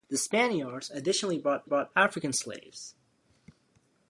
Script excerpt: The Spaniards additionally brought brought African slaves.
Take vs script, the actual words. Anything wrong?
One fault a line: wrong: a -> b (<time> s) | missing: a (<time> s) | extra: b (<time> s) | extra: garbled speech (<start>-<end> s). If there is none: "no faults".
no faults